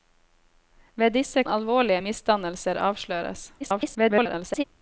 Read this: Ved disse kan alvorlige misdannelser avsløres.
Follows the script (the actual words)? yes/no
no